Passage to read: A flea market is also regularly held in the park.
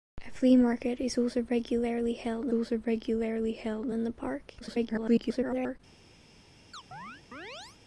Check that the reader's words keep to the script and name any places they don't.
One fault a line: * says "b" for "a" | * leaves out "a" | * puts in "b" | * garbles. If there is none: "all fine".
* puts in "also regularly held"
* garbles